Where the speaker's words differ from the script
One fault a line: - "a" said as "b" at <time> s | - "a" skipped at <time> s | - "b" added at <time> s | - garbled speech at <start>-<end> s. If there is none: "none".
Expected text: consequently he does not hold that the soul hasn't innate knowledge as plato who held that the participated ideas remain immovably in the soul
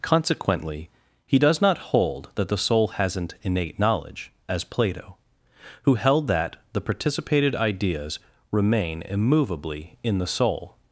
none